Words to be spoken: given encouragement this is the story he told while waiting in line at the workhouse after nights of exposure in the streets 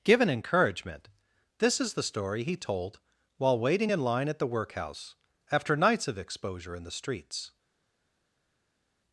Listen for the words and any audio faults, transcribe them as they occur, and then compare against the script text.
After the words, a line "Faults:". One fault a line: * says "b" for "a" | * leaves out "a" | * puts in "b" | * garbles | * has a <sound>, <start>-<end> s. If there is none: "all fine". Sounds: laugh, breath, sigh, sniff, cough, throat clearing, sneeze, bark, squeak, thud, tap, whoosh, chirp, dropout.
given encouragement this is the story he told while waiting in line at the workhouse after nights of exposure in the streets
Faults:
all fine